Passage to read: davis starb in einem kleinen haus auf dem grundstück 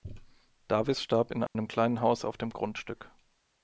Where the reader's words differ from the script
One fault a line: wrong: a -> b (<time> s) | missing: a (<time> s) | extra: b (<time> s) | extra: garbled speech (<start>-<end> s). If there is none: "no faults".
no faults